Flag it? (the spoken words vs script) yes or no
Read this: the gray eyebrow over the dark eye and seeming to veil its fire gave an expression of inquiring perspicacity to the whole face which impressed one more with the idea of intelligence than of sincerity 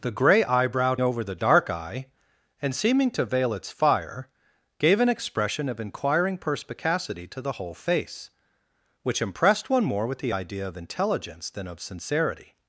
no